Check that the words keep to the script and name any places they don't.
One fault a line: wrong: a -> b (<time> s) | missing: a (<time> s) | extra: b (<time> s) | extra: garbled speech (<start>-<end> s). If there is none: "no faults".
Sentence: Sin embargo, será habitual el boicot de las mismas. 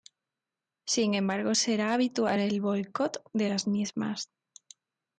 no faults